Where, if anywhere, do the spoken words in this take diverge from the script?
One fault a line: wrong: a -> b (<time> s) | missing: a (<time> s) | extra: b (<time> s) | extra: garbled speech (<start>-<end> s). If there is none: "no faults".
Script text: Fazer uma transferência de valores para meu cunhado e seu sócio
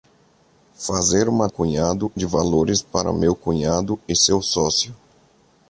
wrong: transferência -> cunhado (1.5 s)